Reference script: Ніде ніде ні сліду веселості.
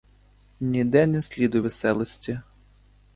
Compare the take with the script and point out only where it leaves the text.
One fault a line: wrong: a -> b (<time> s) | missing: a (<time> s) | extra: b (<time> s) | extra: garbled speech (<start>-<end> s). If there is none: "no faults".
missing: ніде (1.1 s)